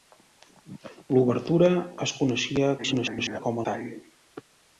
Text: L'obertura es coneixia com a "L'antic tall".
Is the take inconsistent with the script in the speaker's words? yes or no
yes